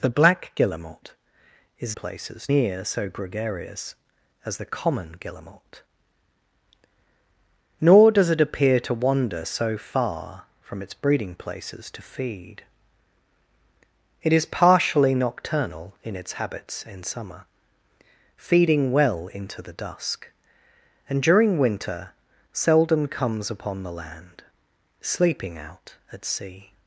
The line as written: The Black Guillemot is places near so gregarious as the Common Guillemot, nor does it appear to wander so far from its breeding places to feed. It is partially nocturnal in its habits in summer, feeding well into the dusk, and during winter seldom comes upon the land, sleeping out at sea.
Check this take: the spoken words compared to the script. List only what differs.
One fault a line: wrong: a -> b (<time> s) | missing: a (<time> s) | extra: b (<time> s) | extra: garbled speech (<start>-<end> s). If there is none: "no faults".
no faults